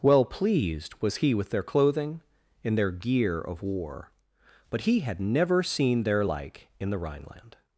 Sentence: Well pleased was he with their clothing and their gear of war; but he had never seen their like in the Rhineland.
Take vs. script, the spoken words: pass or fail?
fail